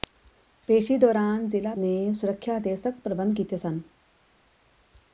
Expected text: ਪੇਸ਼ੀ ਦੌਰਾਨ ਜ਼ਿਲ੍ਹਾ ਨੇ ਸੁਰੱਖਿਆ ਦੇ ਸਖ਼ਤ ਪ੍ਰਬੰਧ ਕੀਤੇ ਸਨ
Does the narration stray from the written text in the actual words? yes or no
no